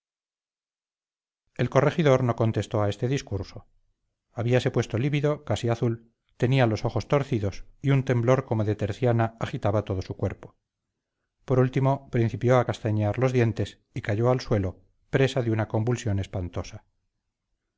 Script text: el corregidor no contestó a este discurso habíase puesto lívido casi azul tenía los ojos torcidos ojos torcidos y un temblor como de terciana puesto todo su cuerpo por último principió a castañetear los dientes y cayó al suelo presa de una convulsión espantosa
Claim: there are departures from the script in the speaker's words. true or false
true